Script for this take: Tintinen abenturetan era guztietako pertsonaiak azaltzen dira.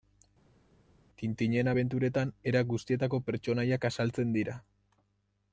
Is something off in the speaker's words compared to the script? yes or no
no